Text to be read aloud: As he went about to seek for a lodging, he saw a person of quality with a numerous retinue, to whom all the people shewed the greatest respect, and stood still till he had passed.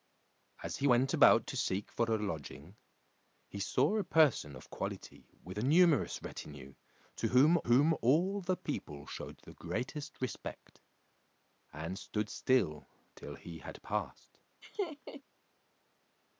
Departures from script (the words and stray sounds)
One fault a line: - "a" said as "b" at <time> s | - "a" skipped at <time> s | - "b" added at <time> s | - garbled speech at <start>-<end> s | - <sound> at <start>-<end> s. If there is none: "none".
- "whom" added at 7.6 s
- laugh at 14.6-15.2 s